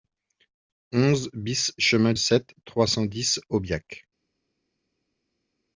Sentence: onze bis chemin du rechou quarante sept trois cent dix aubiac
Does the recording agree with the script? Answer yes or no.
no